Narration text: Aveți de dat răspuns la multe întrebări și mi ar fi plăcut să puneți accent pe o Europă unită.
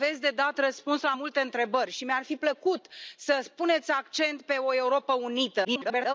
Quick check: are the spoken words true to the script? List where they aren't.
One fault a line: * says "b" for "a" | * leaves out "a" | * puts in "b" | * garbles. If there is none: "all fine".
* garbles